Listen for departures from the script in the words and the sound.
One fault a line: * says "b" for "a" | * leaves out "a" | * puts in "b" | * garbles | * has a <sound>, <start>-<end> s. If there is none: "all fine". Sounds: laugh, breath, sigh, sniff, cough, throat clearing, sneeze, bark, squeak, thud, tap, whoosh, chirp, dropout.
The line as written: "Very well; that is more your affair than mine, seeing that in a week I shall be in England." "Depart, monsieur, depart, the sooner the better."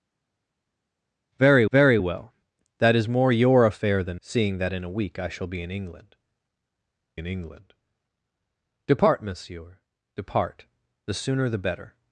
* puts in "very"
* leaves out "mine"
* puts in "in England"